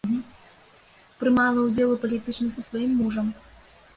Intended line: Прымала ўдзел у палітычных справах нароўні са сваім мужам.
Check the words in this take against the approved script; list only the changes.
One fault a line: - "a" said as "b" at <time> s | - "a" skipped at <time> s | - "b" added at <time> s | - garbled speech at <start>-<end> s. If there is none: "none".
- "справах нароўні" skipped at 2.5 s